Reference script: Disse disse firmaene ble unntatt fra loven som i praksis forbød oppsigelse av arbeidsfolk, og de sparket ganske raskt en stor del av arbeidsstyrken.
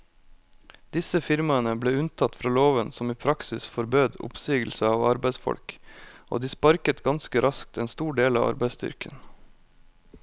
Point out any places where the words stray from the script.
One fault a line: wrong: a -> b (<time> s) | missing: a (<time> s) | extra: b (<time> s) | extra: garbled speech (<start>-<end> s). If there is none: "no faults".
missing: disse (1.2 s)